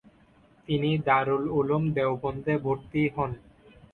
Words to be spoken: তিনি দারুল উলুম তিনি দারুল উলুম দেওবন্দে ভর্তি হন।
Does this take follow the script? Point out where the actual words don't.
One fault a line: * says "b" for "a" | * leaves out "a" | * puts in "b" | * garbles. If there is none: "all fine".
* leaves out "তিনি দারুল উলুম"